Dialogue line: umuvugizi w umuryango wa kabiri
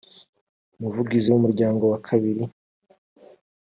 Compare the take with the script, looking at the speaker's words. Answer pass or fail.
pass